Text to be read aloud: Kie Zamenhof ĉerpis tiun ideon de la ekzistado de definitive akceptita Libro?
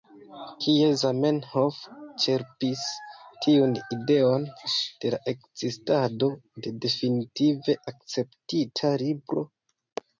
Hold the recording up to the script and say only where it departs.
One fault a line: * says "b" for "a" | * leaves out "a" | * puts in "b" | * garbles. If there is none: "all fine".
all fine